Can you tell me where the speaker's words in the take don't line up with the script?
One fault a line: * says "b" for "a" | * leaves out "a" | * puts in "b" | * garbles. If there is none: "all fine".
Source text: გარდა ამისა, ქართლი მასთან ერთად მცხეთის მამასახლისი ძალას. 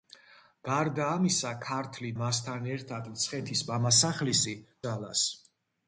all fine